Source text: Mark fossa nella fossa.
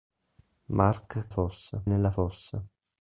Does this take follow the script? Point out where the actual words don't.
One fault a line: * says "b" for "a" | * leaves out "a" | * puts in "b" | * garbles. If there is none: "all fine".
all fine